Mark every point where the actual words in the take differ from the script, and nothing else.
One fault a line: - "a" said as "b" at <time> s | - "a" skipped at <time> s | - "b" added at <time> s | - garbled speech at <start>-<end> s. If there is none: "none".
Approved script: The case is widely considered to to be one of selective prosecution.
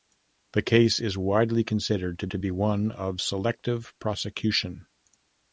none